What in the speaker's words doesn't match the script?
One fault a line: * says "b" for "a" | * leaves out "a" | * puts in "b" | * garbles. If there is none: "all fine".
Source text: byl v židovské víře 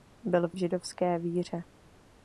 all fine